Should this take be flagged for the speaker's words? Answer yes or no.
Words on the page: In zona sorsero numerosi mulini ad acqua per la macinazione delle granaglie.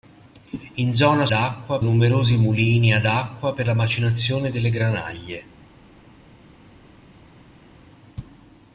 yes